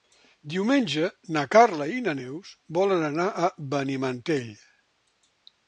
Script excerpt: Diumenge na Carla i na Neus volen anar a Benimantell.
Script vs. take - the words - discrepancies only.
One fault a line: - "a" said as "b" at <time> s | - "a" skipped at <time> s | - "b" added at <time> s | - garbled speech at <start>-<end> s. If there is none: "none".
none